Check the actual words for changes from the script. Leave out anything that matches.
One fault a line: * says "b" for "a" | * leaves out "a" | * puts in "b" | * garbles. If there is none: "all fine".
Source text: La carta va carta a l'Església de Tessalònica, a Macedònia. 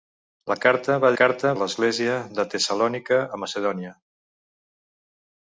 all fine